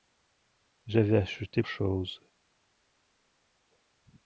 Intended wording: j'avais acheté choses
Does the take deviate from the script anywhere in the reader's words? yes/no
no